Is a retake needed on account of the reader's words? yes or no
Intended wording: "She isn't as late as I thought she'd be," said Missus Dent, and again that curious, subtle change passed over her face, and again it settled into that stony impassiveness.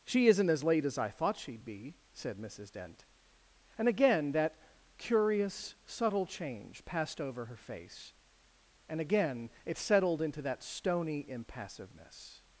no